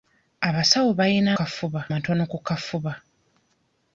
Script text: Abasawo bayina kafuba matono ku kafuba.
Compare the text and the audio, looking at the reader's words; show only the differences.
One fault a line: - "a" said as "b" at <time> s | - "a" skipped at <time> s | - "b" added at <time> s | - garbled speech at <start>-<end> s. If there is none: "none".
none